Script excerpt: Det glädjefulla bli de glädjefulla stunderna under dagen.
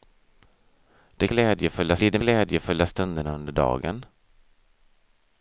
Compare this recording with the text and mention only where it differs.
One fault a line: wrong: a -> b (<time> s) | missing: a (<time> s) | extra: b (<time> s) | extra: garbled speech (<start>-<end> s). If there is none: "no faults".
no faults